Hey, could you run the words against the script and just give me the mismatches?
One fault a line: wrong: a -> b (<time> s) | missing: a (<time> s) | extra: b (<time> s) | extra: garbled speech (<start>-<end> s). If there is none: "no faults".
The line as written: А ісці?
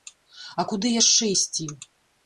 extra: куды яшчэ (0.7 s)